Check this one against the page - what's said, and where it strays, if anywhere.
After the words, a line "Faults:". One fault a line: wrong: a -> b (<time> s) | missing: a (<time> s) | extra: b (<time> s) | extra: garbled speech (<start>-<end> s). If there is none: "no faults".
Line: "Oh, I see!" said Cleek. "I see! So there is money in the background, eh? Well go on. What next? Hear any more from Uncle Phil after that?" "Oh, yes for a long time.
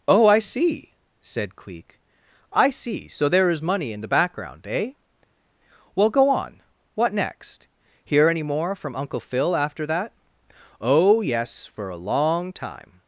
"Oh, I see!" said Cleek. "I see! So there is money in the background, eh? Well go on. What next? Hear any more from Uncle Phil after that?" "Oh, yes for a long time.
Faults:
no faults